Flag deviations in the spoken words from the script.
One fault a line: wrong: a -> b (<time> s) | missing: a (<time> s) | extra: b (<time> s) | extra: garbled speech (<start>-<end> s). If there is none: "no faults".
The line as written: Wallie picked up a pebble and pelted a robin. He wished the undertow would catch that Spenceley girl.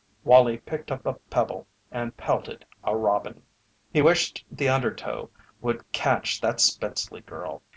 no faults